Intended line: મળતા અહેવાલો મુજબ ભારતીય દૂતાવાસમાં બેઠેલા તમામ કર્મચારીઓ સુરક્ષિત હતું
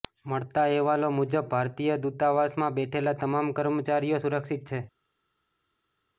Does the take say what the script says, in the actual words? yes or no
no